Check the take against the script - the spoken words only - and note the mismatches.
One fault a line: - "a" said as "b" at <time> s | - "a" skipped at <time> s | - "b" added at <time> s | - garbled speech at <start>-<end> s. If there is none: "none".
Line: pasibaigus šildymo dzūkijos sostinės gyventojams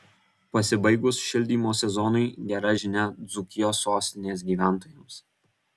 - "sezonui gera žinia" added at 1.8 s